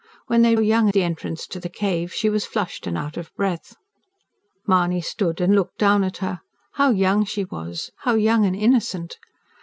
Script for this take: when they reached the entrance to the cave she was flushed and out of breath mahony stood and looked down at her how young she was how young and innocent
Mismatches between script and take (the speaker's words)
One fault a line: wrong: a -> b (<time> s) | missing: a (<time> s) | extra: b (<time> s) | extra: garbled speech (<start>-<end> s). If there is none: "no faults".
wrong: reached -> young (0.6 s)